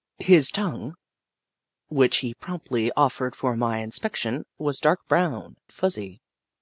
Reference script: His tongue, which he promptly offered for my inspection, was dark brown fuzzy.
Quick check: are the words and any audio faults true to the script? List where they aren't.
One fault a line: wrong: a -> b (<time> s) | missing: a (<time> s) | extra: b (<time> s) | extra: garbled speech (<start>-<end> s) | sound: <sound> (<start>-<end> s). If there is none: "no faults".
no faults